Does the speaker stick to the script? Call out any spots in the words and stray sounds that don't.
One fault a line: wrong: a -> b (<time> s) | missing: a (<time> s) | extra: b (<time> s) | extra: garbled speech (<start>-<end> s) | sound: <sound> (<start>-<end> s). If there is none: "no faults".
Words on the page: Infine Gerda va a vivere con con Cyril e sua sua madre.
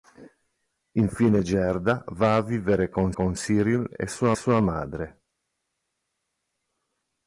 no faults